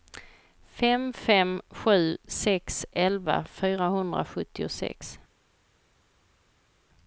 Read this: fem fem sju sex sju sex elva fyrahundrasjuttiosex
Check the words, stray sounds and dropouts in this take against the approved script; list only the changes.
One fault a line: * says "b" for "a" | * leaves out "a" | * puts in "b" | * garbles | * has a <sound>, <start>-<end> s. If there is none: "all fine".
* leaves out "sju sex"